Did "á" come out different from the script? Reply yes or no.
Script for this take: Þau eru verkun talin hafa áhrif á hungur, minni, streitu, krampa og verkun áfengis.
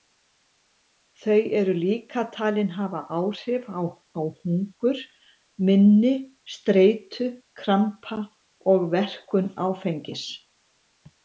no